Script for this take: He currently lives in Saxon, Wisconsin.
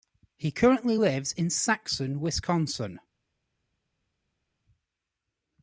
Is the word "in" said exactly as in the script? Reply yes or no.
yes